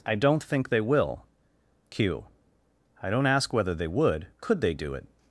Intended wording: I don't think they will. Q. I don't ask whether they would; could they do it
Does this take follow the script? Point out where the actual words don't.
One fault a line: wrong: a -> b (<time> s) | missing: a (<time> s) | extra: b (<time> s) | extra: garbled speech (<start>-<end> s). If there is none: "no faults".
no faults